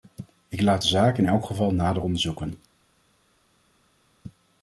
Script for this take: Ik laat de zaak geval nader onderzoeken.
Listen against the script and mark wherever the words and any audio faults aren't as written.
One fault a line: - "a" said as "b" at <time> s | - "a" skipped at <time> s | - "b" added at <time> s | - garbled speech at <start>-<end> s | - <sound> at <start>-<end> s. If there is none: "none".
- "in elk" added at 1.2 s